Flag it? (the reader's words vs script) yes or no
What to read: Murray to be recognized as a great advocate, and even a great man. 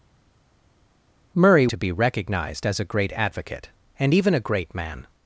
no